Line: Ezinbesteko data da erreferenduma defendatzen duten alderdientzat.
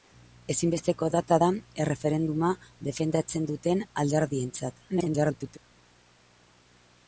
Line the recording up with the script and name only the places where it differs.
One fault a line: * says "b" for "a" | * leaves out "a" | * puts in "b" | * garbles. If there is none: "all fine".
* garbles